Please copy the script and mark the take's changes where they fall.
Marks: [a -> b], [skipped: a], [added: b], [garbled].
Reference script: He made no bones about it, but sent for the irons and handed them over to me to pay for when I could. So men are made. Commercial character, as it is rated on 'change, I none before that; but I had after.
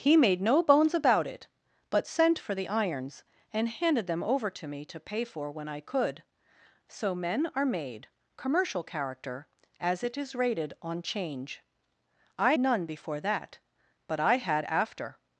He made no bones about it, but sent for the irons and handed them over to me to pay for when I could. So men are made. Commercial character, as it is rated on 'change, I none before that; but I had after.